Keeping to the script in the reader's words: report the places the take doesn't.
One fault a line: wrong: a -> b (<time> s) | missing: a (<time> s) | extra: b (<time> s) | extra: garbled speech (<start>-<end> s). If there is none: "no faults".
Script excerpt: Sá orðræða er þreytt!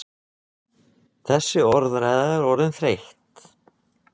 wrong: Sá -> Þessi (1.3 s)
extra: orðin (2.5 s)